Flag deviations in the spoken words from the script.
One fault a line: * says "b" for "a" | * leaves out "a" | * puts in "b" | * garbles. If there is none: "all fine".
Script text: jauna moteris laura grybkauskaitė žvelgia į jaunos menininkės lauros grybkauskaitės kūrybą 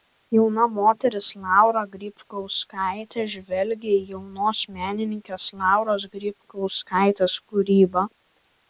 all fine